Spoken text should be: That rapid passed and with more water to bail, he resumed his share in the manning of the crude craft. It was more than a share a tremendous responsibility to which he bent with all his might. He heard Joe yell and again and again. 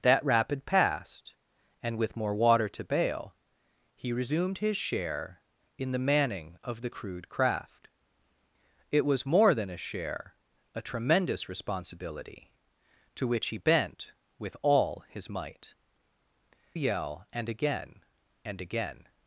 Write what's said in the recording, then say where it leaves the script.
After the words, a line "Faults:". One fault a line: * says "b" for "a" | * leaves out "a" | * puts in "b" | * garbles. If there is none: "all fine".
That rapid passed and with more water to bail, he resumed his share in the manning of the crude craft. It was more than a share a tremendous responsibility to which he bent with all his might. Yell and again and again.
Faults:
* leaves out "He heard Joe"